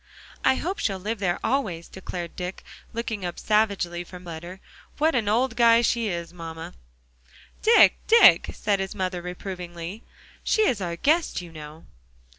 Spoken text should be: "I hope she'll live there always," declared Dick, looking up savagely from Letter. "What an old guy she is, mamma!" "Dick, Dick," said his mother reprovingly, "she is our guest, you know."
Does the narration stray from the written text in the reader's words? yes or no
no